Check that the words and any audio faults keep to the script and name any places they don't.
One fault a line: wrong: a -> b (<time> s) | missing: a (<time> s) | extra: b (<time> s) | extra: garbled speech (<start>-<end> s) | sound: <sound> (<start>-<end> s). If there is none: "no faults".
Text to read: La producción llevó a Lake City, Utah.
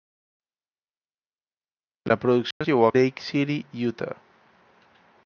sound: dropout (2.5-2.6 s)